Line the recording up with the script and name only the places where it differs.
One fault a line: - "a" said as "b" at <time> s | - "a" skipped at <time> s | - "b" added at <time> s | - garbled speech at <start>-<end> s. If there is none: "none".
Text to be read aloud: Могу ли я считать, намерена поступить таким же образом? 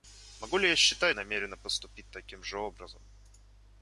none